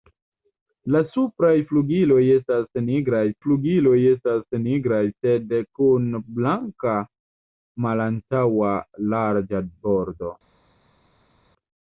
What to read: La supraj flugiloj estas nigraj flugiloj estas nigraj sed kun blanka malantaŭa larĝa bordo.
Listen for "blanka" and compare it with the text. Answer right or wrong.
right